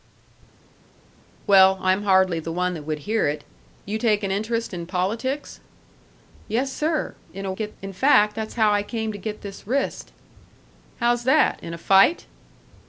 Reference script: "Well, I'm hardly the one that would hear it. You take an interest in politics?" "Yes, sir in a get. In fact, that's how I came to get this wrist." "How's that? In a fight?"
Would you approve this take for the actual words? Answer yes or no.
yes